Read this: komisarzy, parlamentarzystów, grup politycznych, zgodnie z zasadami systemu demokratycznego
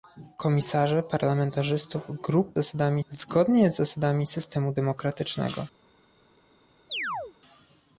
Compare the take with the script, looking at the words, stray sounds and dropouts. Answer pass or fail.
fail